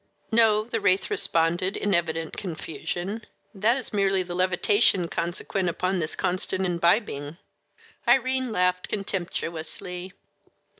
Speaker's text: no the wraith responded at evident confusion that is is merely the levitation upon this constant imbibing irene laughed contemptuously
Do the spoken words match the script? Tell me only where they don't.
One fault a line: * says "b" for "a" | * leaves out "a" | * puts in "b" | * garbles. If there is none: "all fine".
* says "in" for "at"
* leaves out "is"
* puts in "consequent"